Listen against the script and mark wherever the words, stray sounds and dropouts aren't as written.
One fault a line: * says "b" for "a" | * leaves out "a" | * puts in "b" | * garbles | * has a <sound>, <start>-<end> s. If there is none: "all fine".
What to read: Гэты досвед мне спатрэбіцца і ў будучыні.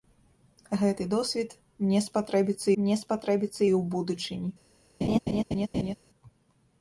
* puts in "мне спатрэбіцца"
* has a laugh, 5.0-6.0 s